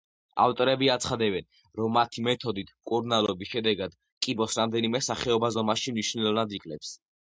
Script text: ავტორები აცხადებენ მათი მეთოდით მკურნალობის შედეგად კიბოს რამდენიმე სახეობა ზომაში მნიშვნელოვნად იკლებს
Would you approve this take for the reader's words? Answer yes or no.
no